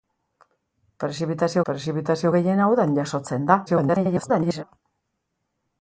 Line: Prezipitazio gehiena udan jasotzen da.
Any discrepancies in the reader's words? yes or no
yes